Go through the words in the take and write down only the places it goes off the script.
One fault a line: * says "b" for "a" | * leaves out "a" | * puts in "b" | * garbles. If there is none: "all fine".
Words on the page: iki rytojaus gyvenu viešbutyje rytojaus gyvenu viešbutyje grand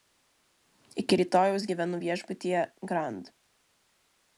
* leaves out "rytojaus gyvenu viešbutyje"